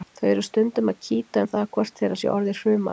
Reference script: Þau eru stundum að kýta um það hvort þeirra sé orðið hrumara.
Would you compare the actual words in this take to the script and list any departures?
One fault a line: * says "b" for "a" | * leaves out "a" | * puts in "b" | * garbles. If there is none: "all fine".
all fine